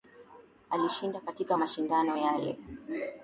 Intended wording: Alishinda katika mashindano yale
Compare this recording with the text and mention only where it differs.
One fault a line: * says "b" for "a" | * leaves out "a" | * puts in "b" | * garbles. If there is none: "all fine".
all fine